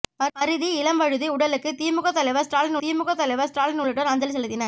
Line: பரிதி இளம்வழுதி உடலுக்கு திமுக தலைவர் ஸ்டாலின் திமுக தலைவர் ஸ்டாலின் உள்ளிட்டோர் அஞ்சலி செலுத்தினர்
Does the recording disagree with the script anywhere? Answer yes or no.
no